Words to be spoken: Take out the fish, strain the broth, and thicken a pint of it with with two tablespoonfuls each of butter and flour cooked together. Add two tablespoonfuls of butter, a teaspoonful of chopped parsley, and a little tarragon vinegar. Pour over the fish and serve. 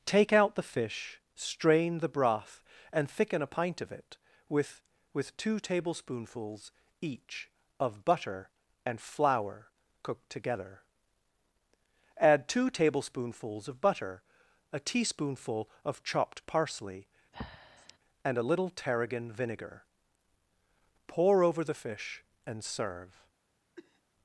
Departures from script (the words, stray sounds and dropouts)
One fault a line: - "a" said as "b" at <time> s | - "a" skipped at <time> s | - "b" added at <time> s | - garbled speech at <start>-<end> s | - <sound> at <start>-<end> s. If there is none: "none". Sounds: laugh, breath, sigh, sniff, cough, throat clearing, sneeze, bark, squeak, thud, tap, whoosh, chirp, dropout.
- breath at 17.3-18.0 s
- cough at 23.8-24.0 s